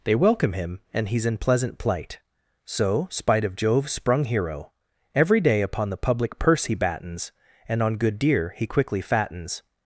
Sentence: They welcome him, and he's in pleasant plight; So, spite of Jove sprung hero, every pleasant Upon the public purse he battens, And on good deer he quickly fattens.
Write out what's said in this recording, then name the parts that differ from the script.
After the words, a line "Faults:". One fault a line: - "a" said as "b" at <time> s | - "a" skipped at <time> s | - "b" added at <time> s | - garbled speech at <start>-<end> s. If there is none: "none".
They welcome him, and he's in pleasant plight; So, spite of Jove sprung hero, every day Upon the public purse he battens, And on good deer he quickly fattens.
Faults:
- "pleasant" said as "day" at 5.4 s